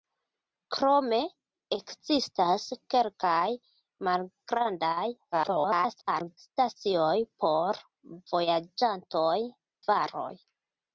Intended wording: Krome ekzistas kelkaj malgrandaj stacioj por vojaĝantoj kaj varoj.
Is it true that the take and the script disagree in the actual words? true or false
true